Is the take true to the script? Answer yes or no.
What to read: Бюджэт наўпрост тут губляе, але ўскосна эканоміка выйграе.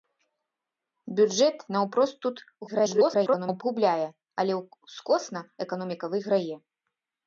no